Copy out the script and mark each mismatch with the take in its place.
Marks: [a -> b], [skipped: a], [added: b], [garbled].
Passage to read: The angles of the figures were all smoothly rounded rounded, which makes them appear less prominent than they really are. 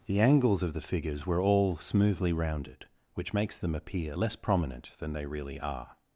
The angles of the figures were all smoothly rounded [skipped: rounded,] which makes them appear less prominent than they really are.